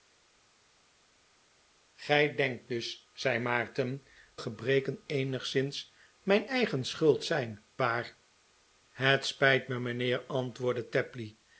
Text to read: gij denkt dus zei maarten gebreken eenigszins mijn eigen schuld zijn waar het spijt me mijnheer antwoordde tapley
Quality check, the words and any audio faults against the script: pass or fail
pass